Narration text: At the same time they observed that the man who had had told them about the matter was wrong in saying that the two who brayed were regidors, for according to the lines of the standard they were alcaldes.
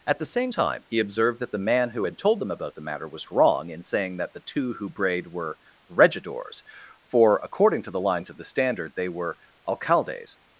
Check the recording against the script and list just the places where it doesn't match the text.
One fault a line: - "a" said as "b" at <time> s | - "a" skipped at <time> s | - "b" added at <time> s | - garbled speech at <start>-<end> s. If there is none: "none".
- "they" said as "he" at 0.9 s
- "had" skipped at 2.2 s